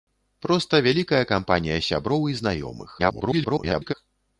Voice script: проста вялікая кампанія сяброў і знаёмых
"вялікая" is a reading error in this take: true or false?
false